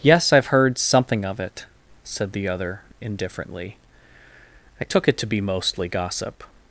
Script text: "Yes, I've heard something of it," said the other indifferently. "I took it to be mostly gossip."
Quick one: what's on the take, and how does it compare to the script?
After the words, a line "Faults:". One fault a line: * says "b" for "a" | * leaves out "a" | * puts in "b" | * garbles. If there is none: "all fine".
"Yes, I've heard something of it," said the other indifferently. "I took it to be mostly gossip."
Faults:
all fine